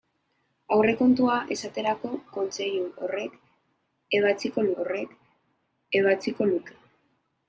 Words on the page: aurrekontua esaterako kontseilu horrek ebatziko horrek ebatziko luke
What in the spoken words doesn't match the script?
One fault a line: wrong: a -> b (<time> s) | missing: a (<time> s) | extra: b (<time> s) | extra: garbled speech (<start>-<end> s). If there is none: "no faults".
no faults